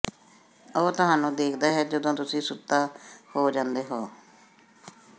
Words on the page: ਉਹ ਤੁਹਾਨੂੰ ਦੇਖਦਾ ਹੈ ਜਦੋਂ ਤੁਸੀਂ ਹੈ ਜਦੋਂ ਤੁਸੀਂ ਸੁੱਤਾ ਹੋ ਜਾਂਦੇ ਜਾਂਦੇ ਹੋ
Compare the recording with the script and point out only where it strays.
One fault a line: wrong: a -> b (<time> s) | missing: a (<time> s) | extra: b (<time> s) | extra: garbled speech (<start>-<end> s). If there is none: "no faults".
missing: ਹੈ ਜਦੋਂ ਤੁਸੀਂ (2.4 s)
missing: ਜਾਂਦੇ (3.8 s)